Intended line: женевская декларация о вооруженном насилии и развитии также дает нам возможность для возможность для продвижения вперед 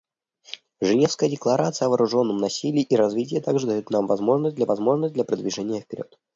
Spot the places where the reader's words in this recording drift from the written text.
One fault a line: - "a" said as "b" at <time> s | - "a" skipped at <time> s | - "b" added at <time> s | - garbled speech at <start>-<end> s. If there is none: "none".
none